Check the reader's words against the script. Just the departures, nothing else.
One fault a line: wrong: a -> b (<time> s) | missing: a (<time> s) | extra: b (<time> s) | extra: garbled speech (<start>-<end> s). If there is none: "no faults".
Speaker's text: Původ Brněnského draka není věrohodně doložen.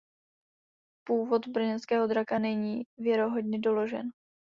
no faults